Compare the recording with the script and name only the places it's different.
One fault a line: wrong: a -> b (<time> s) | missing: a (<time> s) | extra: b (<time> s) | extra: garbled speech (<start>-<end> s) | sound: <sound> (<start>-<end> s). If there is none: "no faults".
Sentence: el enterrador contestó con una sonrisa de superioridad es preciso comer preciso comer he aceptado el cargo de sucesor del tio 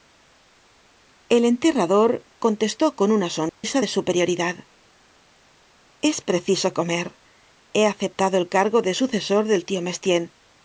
sound: dropout (3.5-3.6 s)
missing: preciso comer (7.2 s)